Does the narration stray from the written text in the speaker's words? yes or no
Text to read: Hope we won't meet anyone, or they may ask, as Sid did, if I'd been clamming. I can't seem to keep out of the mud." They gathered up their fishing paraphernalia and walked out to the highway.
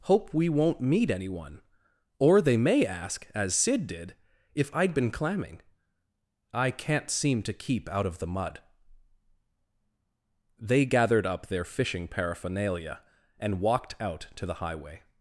no